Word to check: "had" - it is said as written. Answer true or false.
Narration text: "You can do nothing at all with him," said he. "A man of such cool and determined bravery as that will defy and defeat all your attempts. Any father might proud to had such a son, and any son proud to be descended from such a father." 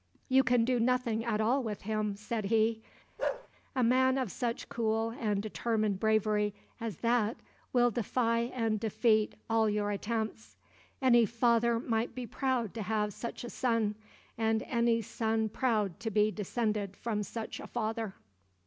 false